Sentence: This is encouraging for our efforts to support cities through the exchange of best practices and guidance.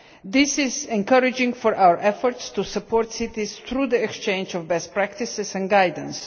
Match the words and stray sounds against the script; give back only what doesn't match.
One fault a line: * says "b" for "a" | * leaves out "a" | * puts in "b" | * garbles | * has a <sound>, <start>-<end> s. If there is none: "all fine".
all fine